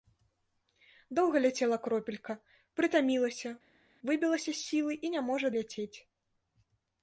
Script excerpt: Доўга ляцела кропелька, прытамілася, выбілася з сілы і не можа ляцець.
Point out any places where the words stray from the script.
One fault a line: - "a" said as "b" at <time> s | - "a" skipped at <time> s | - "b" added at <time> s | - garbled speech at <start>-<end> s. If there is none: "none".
none